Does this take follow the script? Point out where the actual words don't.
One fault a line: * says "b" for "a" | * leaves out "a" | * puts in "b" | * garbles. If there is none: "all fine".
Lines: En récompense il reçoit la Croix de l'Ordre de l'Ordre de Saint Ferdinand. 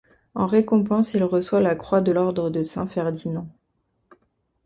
* leaves out "l'Ordre de"